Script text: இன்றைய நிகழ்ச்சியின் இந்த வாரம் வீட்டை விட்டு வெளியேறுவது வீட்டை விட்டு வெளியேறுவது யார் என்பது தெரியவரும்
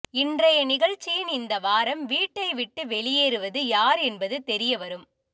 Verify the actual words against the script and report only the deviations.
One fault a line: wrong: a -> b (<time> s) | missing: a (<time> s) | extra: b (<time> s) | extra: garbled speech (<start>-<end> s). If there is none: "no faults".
missing: வீட்டை விட்டு வெளியேறுவது (3.6 s)